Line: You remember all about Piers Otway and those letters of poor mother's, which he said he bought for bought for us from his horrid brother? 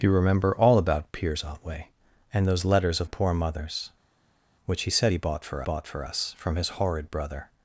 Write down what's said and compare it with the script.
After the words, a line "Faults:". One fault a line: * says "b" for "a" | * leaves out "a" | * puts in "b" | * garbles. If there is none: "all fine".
You remember all about Piers Otway and those letters of poor mother's, which he said he bought for bought for us from his horrid brother?
Faults:
all fine